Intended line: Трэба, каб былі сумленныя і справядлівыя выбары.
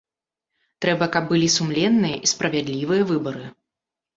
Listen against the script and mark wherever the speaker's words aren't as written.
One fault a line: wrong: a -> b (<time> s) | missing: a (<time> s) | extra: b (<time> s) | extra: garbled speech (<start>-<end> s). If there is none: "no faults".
no faults